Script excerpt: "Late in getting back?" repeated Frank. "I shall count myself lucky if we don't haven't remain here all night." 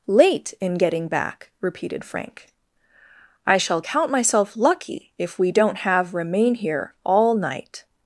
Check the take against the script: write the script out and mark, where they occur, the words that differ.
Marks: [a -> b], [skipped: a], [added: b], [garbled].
"Late in getting back?" repeated Frank. "I shall count myself lucky if we don't [haven't -> have] remain here all night."